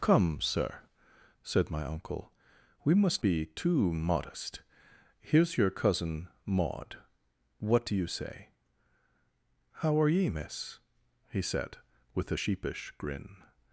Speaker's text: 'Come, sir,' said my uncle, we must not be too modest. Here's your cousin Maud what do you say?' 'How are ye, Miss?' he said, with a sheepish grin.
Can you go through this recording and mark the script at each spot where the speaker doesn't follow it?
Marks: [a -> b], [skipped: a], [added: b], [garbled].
'Come, sir,' said my uncle, we must [skipped: not] be too modest. Here's your cousin Maud what do you say?' 'How are ye, Miss?' he said, with a sheepish grin.